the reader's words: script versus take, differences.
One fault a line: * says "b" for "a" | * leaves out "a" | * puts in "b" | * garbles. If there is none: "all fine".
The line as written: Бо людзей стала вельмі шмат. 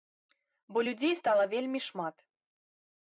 all fine